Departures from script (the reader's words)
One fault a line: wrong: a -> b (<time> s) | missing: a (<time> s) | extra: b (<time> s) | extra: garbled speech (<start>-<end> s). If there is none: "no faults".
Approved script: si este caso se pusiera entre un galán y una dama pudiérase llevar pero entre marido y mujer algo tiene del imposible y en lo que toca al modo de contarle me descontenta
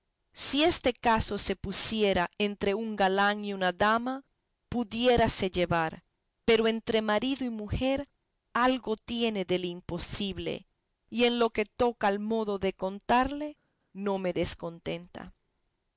extra: no (13.9 s)